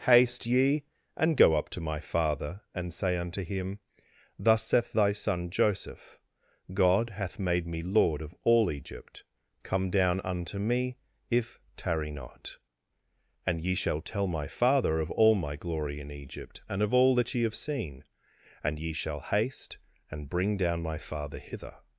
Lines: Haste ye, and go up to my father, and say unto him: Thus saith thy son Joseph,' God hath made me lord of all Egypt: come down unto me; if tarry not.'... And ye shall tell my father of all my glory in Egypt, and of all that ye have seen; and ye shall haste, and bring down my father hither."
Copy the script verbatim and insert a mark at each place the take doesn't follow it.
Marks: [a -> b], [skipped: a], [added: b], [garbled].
Haste ye, and go up to my father, and say unto him: Thus saith thy son Joseph,' God hath made me lord of all Egypt: come down unto me; if tarry not.'... And ye shall tell my father of all my glory in Egypt, and of all that ye have seen; and ye shall haste, and bring down my father hither."